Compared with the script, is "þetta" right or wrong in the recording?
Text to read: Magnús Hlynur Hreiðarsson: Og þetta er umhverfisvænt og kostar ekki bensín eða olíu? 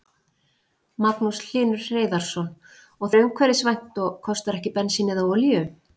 wrong